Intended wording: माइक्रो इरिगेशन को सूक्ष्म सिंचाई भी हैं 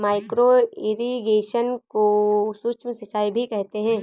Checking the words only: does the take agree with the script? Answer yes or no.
no